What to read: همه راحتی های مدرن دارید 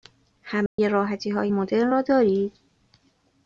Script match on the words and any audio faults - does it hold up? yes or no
no